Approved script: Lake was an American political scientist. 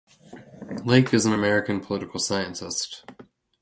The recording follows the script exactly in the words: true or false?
false